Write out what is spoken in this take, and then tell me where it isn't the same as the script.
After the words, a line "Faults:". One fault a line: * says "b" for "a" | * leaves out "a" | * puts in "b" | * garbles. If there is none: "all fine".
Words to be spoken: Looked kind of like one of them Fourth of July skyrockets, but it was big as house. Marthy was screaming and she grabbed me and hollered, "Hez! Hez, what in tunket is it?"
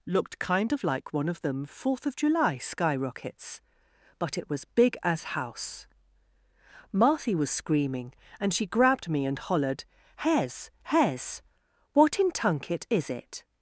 Looked kind of like one of them Fourth of July skyrockets, but it was big as house. Marthy was screaming and she grabbed me and hollered, "Hez! Hez, what in tunket is it?"
Faults:
all fine